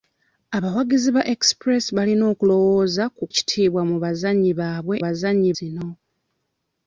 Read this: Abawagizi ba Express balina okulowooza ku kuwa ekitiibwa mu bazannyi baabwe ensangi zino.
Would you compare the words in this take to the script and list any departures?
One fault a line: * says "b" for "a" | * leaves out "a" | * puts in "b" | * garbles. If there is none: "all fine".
* leaves out "kuwa"
* says "bazannyi" for "ensangi"